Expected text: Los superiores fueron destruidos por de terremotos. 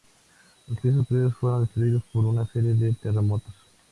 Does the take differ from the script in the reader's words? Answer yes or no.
yes